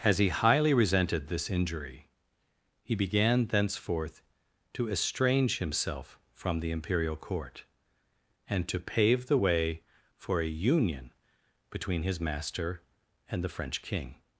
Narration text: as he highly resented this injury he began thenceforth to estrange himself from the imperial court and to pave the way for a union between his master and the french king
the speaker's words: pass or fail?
pass